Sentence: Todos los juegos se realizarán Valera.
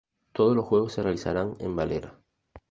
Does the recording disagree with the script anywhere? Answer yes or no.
yes